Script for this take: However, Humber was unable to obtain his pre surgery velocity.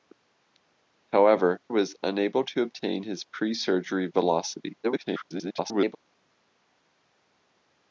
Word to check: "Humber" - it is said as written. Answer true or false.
false